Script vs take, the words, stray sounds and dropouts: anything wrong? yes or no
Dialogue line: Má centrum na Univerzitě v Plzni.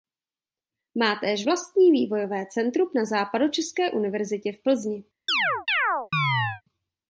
yes